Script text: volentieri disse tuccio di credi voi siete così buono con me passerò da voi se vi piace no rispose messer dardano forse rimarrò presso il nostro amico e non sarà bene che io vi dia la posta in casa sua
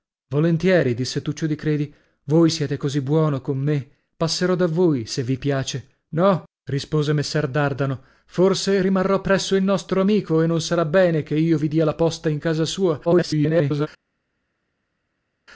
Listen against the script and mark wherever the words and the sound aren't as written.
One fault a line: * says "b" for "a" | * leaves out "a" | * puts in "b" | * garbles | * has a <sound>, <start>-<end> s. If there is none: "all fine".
* garbles